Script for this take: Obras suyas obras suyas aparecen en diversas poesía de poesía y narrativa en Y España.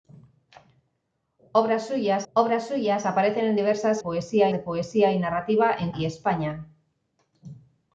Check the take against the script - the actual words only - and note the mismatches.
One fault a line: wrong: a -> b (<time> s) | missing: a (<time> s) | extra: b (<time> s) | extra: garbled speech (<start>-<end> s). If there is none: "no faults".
no faults